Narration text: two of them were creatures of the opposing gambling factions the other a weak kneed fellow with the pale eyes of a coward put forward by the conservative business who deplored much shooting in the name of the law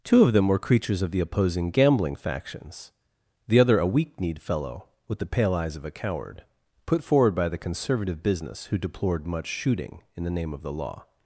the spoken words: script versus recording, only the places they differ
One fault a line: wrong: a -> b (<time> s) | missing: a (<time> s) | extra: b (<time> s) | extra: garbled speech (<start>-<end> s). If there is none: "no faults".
no faults